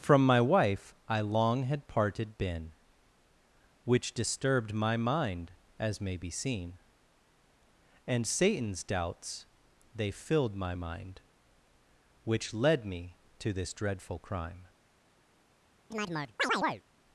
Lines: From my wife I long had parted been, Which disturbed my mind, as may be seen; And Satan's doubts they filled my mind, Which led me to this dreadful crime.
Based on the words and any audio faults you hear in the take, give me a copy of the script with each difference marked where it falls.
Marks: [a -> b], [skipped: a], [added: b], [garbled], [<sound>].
From my wife I long had parted been, Which disturbed my mind, as may be seen; And Satan's doubts they filled my mind, Which led me to this dreadful crime. [chirp]